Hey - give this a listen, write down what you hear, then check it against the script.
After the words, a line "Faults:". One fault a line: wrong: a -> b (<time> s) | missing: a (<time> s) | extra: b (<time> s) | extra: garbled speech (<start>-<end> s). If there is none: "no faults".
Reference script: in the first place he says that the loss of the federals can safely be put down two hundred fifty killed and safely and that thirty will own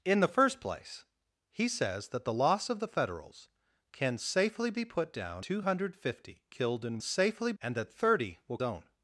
in the first place he says that the loss of the federals can safely be put down two hundred fifty killed and safely and that thirty will own
Faults:
no faults